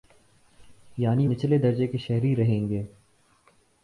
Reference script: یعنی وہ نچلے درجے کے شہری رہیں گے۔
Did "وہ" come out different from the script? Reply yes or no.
yes